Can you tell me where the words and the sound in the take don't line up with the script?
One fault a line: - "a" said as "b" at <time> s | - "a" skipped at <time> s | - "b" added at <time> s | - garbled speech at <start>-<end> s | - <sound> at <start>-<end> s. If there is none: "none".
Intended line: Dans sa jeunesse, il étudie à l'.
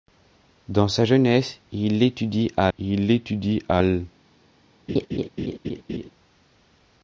- "il étudie à" added at 2.8 s
- laugh at 4.9-6.1 s